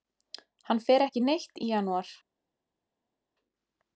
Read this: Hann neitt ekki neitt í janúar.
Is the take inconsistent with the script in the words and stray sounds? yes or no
yes